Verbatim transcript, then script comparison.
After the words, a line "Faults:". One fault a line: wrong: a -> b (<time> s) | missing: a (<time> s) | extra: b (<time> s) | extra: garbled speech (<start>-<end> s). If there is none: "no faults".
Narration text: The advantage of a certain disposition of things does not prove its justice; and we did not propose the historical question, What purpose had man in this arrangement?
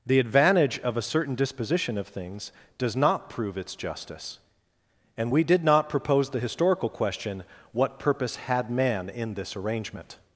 The advantage of a certain disposition of things does not prove its justice; and we did not propose the historical question, What purpose had man in this arrangement?
Faults:
no faults